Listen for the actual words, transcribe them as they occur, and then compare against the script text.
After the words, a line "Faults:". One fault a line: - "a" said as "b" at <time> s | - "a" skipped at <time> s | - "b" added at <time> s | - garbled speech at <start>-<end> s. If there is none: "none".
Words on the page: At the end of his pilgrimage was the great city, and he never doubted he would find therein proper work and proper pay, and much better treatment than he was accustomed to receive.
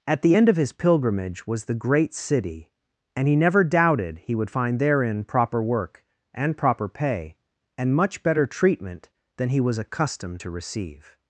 At the end of his pilgrimage was the great city, and he never doubted he would find therein proper work and proper pay, and much better treatment than he was accustomed to receive.
Faults:
none